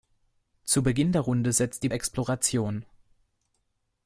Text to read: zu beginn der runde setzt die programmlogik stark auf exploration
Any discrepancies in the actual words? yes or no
yes